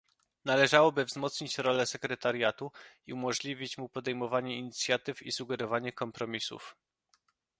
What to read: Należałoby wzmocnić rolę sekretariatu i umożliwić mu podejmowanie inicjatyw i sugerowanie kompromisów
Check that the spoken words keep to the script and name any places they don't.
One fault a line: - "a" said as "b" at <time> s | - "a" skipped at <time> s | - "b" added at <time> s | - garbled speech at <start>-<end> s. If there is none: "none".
none